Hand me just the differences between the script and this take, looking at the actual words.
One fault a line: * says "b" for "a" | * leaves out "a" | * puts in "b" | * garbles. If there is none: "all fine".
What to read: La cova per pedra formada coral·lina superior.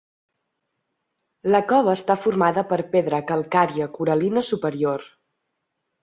* puts in "està formada"
* says "calcària" for "formada"